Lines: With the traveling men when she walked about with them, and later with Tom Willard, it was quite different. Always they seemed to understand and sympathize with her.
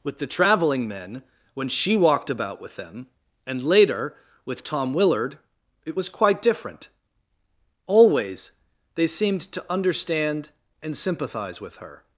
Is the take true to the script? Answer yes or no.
yes